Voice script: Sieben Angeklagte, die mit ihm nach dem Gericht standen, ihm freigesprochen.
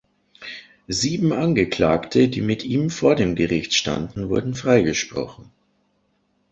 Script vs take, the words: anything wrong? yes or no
yes